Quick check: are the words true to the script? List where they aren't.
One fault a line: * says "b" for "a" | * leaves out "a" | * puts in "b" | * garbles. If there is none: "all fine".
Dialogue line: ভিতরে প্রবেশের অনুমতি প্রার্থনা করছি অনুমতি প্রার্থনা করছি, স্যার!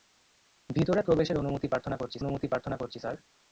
all fine